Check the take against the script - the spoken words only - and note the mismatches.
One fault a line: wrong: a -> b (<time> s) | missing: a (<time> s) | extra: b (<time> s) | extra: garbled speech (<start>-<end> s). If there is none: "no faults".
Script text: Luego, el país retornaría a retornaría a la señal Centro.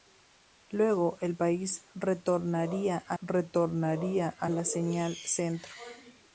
no faults